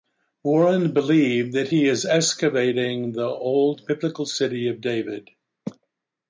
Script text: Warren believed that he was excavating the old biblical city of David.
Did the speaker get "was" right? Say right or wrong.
wrong